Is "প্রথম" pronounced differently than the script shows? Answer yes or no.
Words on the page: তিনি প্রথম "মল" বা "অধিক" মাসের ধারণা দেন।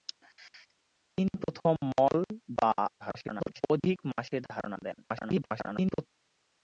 no